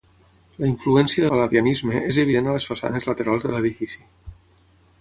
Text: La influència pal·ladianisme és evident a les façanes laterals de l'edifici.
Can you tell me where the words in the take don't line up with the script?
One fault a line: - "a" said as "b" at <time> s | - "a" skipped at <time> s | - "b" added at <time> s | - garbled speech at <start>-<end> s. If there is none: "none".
none